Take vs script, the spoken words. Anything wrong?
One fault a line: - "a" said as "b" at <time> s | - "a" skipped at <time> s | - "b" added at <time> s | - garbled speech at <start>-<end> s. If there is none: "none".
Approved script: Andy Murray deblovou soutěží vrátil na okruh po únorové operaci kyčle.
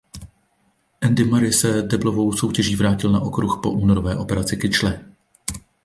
- "se" added at 1.5 s